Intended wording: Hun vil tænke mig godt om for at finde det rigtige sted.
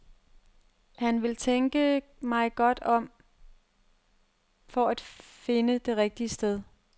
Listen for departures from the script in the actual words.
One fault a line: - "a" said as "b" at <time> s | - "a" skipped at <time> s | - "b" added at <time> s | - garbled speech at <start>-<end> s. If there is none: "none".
- "Hun" said as "Han" at 1.0 s